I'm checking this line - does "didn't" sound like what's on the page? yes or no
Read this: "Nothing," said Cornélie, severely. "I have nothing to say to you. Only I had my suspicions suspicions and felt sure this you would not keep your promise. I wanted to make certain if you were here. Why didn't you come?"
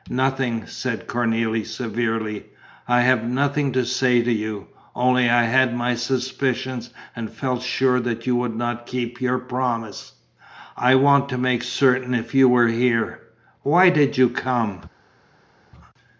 no